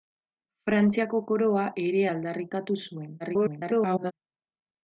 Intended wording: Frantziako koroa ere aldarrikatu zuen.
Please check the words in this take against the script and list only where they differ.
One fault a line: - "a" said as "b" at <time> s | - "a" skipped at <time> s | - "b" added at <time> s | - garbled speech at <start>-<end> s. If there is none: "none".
- garbled speech at 3.2-4.1 s